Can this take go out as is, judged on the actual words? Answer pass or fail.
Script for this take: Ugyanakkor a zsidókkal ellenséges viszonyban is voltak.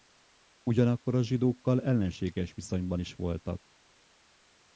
pass